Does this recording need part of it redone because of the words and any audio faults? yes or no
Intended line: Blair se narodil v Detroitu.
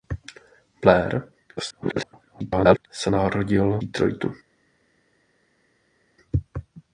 yes